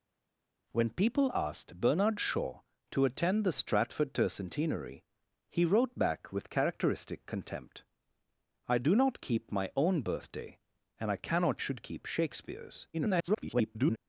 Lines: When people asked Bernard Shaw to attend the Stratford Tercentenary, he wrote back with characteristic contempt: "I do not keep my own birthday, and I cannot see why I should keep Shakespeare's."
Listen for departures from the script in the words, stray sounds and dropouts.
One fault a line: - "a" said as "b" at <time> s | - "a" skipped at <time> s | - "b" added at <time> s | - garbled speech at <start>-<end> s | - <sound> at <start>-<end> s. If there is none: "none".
- "see why I" skipped at 11.6 s
- garbled speech at 12.9-14.0 s